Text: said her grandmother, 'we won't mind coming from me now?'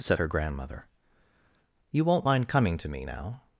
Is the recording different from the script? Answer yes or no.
yes